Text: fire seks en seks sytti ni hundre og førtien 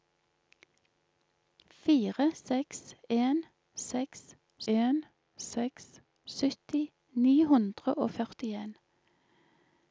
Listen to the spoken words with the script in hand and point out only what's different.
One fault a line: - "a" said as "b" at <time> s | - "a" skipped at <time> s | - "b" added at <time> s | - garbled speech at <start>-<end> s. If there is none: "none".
- "en seks" added at 4.7 s